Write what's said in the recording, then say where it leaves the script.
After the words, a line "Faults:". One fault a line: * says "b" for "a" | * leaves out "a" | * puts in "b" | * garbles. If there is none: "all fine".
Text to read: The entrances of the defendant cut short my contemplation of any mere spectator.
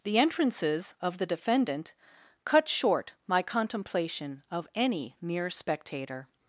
The entrances of the defendant cut short my contemplation of any mere spectator.
Faults:
all fine